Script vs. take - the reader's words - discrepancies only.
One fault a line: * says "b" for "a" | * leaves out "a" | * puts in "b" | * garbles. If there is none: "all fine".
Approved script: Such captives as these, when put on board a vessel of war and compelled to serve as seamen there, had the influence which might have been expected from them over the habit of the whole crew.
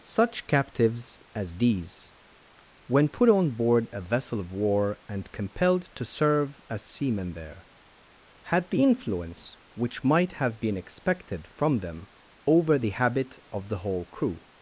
all fine